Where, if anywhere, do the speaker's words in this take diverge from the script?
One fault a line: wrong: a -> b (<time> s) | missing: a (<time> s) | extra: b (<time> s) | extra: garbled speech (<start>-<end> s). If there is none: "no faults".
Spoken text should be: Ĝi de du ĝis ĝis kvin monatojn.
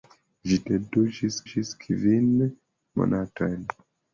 no faults